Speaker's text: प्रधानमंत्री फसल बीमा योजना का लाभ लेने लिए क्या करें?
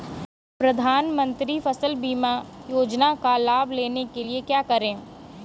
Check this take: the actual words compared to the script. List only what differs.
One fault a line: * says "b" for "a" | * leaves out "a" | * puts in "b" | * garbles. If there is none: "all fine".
* puts in "के"